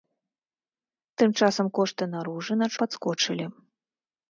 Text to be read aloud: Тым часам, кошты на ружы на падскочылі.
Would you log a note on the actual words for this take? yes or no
no